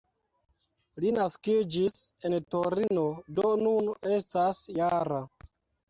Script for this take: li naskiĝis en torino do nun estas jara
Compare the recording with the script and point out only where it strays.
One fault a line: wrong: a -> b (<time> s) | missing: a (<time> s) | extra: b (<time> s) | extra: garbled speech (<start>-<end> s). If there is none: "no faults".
no faults